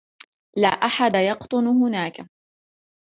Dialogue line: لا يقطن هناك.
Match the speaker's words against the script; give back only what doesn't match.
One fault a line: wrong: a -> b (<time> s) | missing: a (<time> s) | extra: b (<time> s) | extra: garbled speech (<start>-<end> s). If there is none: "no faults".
extra: أحد (0.6 s)